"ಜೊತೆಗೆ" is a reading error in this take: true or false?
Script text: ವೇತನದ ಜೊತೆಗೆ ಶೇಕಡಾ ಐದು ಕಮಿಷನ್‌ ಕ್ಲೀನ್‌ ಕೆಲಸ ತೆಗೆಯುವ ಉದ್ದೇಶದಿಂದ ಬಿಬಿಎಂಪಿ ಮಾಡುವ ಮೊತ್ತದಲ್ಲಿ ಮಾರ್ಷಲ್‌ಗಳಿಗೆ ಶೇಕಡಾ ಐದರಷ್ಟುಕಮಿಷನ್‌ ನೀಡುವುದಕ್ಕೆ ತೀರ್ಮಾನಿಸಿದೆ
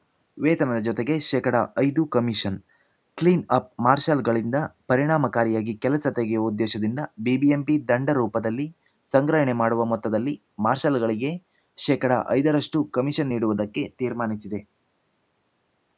false